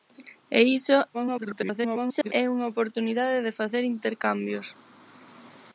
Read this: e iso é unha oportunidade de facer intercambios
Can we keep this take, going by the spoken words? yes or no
no